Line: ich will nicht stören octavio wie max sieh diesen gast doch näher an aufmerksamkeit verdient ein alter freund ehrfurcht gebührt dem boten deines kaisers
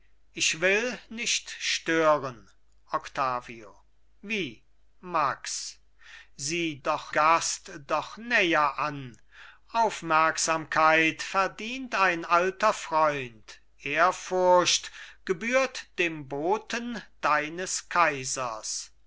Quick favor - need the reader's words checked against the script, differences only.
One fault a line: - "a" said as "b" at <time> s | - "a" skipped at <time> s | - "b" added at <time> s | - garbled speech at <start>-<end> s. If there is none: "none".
- "diesen" said as "doch" at 6.8 s